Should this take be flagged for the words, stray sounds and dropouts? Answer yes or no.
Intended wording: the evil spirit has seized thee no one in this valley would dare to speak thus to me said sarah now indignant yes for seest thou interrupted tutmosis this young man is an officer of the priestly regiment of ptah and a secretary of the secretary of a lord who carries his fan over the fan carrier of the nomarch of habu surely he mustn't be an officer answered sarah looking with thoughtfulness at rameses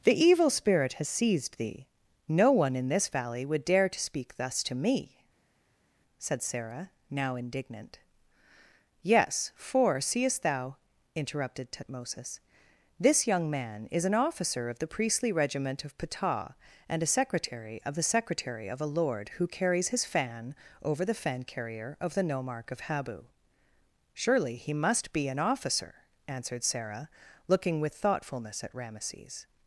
yes